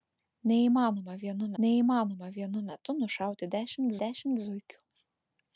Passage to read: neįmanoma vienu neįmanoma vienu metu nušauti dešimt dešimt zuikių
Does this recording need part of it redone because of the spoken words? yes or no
no